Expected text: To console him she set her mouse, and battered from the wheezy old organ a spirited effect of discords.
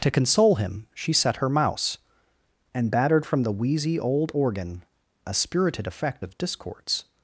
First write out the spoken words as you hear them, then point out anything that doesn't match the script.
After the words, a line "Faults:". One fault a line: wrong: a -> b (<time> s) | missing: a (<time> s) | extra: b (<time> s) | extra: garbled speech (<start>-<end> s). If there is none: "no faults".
To console him she set her mouse, and battered from the wheezy old organ a spirited effect of discords.
Faults:
no faults